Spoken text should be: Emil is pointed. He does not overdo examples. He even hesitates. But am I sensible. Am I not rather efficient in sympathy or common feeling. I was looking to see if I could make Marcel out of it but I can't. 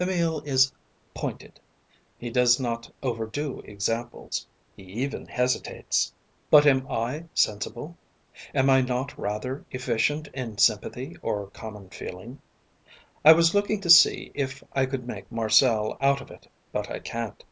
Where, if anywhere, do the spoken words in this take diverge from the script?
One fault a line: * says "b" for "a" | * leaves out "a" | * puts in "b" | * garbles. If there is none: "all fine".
all fine